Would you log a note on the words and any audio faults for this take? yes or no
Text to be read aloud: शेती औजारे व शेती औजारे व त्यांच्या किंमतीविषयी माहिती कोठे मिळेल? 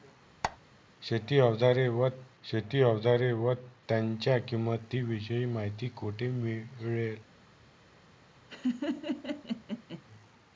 yes